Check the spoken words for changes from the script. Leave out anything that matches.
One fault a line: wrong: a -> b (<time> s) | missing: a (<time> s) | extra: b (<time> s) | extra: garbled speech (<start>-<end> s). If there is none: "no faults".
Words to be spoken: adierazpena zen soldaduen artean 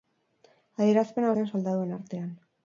no faults